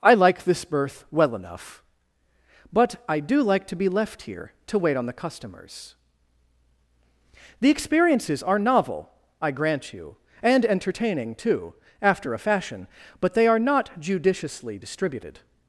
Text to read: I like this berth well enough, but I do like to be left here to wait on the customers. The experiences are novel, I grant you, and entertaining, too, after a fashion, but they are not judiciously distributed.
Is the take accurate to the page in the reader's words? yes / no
yes